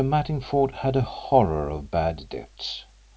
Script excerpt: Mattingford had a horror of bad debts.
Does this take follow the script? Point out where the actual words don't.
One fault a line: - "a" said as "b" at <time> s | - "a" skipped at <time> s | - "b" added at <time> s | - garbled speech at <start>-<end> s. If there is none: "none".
none